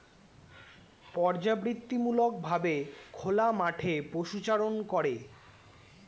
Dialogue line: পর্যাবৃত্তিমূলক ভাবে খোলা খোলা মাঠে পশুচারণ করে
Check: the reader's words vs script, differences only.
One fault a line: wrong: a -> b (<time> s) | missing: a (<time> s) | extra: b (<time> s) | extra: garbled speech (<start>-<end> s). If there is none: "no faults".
missing: খোলা (3.5 s)